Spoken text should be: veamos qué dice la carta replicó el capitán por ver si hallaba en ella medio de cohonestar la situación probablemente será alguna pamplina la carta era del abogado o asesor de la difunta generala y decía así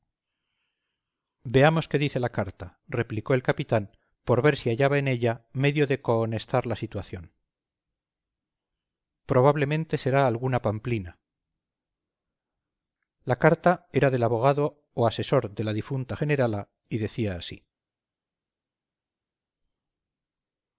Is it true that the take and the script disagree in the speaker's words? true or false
false